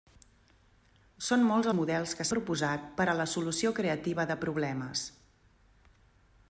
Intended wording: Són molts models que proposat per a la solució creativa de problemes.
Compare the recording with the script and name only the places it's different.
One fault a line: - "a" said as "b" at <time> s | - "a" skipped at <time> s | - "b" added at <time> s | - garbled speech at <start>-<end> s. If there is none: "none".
none